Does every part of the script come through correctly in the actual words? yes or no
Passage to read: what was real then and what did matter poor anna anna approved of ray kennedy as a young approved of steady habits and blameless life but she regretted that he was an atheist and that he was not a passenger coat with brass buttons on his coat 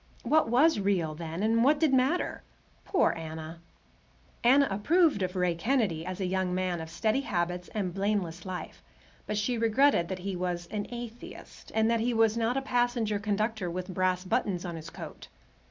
no